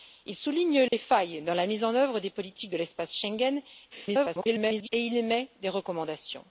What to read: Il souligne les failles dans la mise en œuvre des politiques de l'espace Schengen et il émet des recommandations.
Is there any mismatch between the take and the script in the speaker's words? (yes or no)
yes